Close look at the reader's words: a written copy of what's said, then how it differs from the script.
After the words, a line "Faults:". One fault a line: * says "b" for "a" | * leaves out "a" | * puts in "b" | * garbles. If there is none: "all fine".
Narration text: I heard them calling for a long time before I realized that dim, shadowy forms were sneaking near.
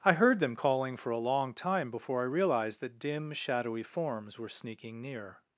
I heard them calling for a long time before I realized that dim, shadowy forms were sneaking near.
Faults:
all fine